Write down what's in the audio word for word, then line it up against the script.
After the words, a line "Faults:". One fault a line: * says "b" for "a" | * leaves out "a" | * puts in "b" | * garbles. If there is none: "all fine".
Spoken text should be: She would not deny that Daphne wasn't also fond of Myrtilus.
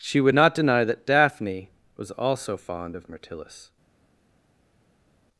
She would not deny that Daphne was also fond of Myrtilus.
Faults:
* says "was" for "wasn't"